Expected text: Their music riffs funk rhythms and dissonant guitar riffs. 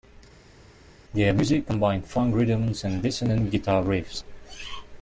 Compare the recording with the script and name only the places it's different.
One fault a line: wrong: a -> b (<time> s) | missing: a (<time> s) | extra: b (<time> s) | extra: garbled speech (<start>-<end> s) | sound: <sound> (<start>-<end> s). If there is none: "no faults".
wrong: riffs -> combined (1.7 s)